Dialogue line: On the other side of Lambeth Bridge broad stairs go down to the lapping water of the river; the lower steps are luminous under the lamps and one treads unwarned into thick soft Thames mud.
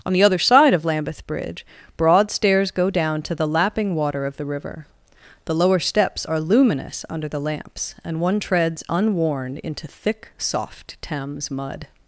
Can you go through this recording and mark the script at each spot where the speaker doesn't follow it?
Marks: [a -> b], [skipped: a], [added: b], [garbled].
On the other side of Lambeth Bridge broad stairs go down to the lapping water of the river; the lower steps are luminous under the lamps and one treads unwarned into thick soft Thames mud.